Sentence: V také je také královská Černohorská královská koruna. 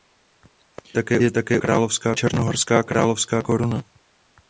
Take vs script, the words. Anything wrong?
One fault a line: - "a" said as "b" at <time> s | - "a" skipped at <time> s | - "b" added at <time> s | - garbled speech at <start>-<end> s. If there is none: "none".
none